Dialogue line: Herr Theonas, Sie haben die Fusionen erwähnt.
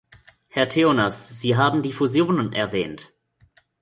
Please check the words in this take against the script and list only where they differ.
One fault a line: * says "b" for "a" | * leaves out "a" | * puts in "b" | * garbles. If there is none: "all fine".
all fine